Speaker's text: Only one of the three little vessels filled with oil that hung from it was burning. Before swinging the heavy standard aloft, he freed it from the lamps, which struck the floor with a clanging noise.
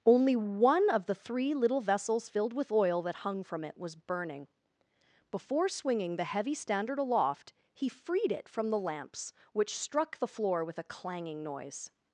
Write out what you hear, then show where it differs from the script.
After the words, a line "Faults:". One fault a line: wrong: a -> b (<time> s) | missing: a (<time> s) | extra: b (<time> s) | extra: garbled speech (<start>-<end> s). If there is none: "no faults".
Only one of the three little vessels filled with oil that hung from it was burning. Before swinging the heavy standard aloft, he freed it from the lamps, which struck the floor with a clanging noise.
Faults:
no faults